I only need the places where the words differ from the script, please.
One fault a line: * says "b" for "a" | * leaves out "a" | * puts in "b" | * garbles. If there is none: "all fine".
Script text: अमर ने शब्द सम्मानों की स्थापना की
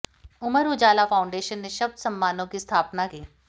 * puts in "उजाला फाउंडेशन"